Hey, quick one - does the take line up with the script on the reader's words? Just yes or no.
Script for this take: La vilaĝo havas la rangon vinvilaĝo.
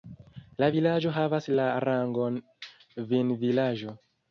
yes